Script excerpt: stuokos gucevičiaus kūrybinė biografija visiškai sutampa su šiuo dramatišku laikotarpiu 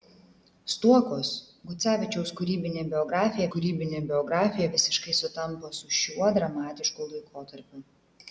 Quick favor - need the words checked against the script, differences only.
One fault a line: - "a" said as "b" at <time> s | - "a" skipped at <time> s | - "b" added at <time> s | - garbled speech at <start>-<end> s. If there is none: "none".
- "kūrybinė biografija" added at 3.5 s